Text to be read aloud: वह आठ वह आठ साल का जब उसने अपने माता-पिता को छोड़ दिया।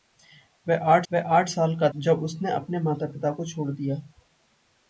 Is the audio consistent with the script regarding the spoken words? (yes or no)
yes